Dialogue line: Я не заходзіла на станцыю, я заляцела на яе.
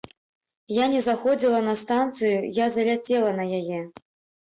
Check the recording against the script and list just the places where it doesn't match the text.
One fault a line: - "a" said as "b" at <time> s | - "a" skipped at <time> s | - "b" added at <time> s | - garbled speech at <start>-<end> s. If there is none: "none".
none